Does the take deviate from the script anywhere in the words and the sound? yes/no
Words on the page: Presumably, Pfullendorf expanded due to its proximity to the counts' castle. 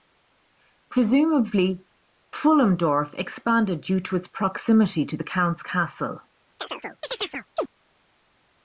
yes